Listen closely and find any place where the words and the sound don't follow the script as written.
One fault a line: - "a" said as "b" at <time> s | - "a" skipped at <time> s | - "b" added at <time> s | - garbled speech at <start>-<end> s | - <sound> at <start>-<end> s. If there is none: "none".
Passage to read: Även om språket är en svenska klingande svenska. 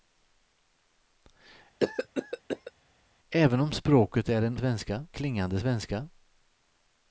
- cough at 1.8-2.7 s